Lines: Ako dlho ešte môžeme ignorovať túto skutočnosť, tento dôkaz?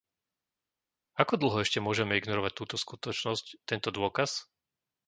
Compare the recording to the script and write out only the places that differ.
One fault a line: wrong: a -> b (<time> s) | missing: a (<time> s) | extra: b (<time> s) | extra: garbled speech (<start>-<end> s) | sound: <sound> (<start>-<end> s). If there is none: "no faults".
no faults